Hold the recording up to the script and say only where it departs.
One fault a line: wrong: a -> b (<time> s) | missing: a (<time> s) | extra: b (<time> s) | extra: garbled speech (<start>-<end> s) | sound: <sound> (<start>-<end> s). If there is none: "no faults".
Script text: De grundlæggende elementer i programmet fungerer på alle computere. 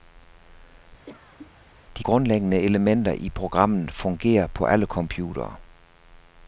sound: cough (1.1-1.5 s)